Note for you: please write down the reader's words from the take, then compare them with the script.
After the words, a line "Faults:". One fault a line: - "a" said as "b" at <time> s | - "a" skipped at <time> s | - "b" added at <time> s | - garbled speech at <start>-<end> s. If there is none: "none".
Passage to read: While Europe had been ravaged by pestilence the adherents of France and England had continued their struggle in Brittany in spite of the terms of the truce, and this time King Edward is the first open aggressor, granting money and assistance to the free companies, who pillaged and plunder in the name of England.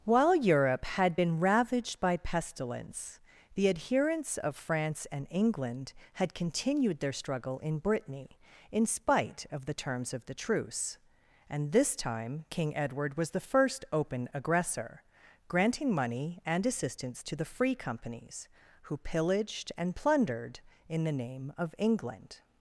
While Europe had been ravaged by pestilence the adherents of France and England had continued their struggle in Brittany in spite of the terms of the truce, and this time King Edward was the first open aggressor, granting money and assistance to the free companies, who pillaged and plundered in the name of England.
Faults:
- "is" said as "was" at 13.2 s
- "plunder" said as "plundered" at 19.9 s